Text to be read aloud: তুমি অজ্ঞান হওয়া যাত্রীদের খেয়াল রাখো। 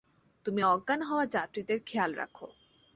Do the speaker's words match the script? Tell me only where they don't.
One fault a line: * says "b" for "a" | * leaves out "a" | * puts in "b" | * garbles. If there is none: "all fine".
all fine